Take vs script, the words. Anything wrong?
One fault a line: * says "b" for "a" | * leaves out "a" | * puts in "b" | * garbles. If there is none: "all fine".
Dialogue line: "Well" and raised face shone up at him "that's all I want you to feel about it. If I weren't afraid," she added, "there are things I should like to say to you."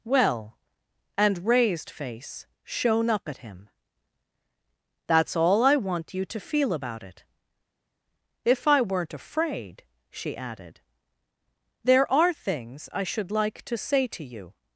all fine